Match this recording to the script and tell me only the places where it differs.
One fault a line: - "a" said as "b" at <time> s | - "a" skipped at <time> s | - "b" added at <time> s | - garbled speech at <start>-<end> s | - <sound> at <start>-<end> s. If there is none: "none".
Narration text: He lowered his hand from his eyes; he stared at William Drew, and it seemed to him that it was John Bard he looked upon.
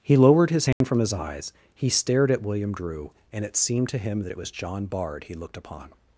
- dropout at 0.7-0.8 s